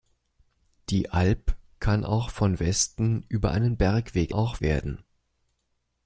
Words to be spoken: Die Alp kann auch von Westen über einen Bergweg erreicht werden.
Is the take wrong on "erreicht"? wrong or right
wrong